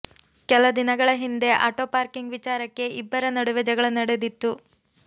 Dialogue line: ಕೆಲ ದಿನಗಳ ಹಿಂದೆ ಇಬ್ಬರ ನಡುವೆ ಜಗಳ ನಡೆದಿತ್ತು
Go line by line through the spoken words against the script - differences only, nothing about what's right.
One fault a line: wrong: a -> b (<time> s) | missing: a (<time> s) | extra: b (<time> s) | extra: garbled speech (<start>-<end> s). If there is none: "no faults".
extra: ಆಟೋ ಪಾರ್ಕಿಂಗ್ ವಿಚಾರಕ್ಕೆ (1.7 s)